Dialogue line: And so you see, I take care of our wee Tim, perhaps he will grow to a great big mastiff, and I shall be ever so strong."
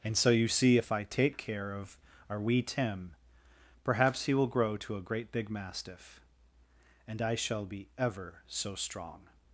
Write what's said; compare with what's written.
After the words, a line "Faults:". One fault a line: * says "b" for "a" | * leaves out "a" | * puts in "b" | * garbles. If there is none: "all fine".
And so you see, if I take care of our wee Tim, perhaps he will grow to a great big mastiff, and I shall be ever so strong."
Faults:
* puts in "if"